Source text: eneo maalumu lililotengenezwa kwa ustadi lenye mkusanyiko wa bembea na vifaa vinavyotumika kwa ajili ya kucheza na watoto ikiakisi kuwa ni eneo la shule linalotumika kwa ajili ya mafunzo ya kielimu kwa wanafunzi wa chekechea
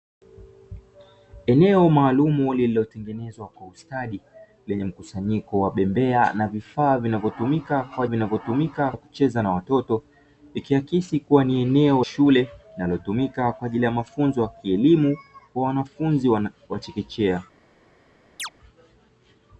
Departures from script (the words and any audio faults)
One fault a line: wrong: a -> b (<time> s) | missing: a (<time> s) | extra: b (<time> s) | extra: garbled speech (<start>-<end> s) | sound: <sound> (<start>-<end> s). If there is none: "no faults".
wrong: ajili -> vinavyotumika (8.0 s)
missing: la (12.0 s)
sound: chirp (18.4-18.5 s)